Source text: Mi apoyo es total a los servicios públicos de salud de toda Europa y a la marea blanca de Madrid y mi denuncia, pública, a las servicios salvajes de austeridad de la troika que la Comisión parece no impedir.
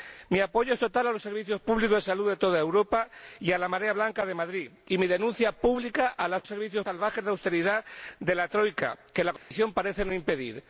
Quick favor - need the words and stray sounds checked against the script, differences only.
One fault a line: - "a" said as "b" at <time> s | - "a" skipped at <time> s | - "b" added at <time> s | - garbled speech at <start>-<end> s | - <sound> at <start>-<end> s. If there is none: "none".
- dropout at 9.4-9.5 s